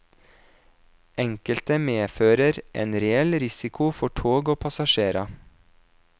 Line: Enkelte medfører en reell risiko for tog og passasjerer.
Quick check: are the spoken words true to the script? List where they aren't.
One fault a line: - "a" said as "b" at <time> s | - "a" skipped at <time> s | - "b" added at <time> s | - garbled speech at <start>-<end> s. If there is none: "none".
none